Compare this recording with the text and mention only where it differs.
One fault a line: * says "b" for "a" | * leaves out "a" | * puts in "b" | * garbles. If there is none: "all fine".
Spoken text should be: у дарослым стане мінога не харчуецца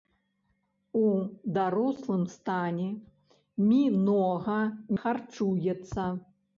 * leaves out "не"